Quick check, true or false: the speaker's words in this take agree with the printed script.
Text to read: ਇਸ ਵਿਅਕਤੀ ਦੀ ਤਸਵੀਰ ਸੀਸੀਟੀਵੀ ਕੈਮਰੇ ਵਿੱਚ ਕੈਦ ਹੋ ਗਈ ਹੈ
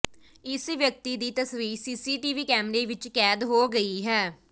true